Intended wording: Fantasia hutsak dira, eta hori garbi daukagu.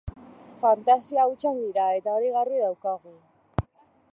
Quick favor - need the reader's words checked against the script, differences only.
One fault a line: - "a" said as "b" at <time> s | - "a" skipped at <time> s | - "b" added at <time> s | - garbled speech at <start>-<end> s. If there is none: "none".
none